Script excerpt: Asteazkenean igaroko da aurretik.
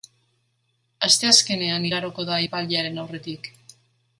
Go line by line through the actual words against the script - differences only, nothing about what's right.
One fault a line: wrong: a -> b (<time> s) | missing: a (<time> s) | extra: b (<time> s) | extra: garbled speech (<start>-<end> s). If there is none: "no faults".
extra: epailearen (2.4 s)